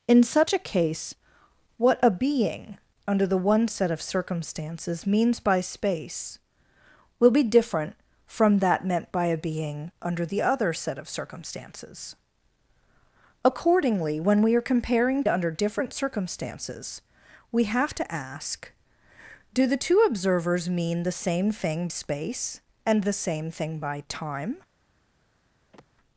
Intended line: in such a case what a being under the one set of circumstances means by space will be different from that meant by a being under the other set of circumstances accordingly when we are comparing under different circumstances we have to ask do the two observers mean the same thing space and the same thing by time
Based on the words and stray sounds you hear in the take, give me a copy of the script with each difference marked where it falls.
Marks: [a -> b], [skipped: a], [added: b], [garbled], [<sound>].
in such a case what a being under the one set of circumstances means by space will be different from that meant by a being under the other set of circumstances accordingly when we are comparing under different circumstances we have to ask do the two observers mean the same thing space and the same thing by time [sigh]